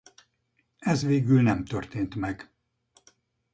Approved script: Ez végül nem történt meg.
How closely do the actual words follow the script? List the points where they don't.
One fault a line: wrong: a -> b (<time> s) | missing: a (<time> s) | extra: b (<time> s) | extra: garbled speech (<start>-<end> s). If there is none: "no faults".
no faults